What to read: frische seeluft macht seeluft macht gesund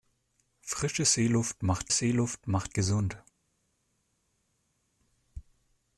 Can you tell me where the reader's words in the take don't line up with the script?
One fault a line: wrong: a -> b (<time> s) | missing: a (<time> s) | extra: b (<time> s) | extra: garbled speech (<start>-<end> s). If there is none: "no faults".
no faults